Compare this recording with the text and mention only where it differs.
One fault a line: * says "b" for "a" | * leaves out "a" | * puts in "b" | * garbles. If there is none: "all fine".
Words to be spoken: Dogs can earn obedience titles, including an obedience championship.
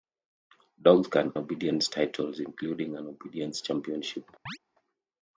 * leaves out "earn"